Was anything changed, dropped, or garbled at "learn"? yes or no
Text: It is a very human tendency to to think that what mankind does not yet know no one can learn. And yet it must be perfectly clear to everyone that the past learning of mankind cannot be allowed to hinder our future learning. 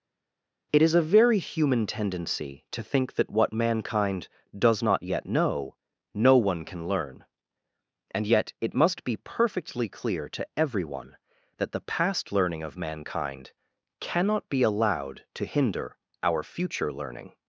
no